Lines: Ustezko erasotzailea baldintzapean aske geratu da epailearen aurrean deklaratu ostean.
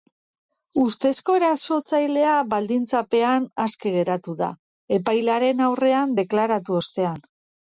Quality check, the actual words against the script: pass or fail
pass